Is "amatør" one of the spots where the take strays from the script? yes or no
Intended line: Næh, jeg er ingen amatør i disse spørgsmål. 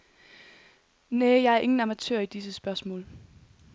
no